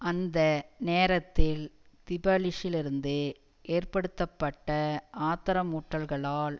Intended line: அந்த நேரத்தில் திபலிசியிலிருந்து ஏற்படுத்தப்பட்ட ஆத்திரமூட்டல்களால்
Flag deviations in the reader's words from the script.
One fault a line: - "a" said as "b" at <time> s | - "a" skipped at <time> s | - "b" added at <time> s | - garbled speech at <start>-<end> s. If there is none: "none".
none